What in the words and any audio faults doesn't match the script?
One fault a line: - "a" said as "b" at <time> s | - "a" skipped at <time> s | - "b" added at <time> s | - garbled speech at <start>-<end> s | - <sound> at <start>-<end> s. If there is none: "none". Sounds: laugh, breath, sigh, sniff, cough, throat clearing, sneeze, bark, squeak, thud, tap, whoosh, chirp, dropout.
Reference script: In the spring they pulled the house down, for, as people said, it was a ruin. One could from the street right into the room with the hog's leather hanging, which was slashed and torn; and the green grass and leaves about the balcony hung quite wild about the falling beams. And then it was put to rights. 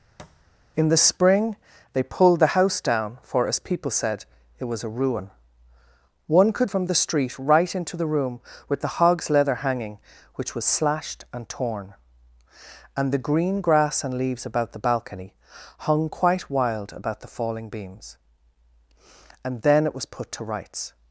- thud at 0.2-0.4 s